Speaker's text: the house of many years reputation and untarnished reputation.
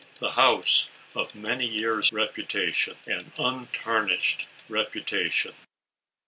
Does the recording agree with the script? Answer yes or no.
yes